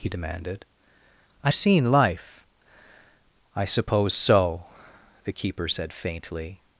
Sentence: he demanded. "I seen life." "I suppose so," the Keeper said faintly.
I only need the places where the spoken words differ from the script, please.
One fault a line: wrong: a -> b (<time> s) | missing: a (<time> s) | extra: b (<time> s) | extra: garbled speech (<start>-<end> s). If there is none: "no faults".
no faults